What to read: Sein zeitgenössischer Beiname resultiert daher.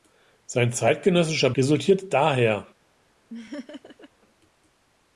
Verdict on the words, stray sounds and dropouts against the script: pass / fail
fail